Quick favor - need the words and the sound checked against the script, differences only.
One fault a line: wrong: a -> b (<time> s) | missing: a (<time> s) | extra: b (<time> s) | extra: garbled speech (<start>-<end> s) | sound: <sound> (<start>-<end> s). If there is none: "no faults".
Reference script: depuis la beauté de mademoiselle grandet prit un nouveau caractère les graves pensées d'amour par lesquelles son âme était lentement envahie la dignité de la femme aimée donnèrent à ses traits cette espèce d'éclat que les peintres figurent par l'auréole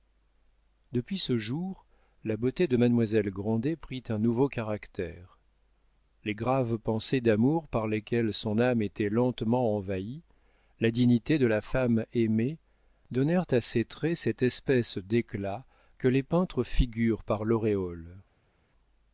extra: ce jour (1.2 s)